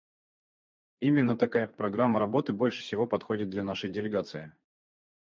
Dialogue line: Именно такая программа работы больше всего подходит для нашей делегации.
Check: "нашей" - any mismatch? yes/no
no